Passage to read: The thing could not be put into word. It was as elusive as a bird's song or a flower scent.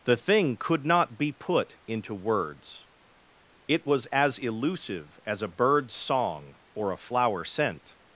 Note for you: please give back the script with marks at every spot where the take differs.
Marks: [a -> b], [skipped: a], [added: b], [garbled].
The thing could not be put into [word. -> words] It was as elusive as a bird's song or a flower scent.